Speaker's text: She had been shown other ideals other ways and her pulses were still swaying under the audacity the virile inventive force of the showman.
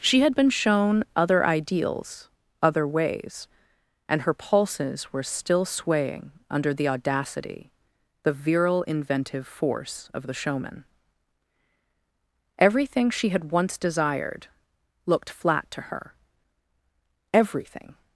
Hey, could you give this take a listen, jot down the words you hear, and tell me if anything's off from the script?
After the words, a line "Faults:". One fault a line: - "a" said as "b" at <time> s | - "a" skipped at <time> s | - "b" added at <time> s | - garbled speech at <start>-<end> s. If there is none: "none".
She had been shown other ideals other ways and her pulses were still swaying under the audacity the virile inventive force of the showman. Everything she had once desired looked flat to her; everything
Faults:
- "Everything she had once desired looked flat to her everything" added at 12.6 s